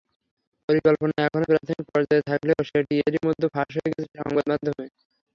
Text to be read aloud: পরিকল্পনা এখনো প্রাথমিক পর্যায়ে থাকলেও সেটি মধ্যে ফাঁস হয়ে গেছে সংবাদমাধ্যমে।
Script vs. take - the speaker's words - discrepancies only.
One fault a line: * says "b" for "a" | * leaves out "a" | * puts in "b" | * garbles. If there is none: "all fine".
* puts in "এরই"